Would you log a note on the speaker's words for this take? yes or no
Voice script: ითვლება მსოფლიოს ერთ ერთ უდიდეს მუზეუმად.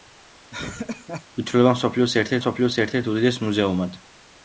yes